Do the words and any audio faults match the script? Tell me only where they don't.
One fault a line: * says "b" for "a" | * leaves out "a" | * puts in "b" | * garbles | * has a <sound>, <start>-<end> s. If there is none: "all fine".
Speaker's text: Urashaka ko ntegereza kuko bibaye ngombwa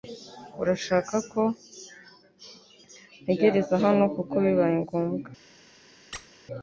* puts in "hano"
* has a squeak, 6.1-6.3 s